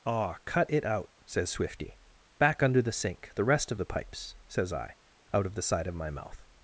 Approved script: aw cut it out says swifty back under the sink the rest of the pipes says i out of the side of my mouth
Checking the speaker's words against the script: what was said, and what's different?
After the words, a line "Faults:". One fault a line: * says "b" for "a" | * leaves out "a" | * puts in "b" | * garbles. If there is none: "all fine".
aw cut it out says swifty back under the sink the rest of the pipes says i out of the side of my mouth
Faults:
all fine